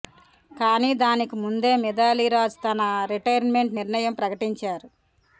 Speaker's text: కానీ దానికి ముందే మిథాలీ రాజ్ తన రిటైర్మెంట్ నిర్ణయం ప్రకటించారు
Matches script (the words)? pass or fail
pass